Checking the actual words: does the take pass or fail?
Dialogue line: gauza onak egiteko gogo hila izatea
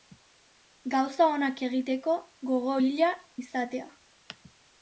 pass